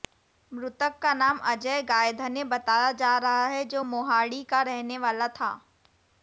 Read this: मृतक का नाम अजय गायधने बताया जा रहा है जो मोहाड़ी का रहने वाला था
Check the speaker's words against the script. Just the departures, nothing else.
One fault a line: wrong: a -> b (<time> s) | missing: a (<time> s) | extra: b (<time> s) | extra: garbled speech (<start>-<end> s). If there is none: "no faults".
no faults